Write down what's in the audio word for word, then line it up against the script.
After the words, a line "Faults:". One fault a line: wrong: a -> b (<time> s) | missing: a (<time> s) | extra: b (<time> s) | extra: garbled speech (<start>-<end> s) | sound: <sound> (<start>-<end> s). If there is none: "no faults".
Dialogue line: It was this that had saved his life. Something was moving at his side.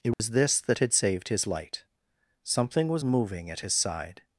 It was this that had saved his light. Something was moving at his side.
Faults:
sound: dropout (0.1-0.2 s)
wrong: life -> light (1.5 s)